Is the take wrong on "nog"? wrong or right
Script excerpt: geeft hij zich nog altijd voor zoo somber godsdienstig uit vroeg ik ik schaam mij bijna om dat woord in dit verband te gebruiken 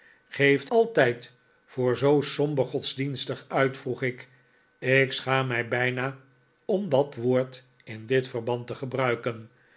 wrong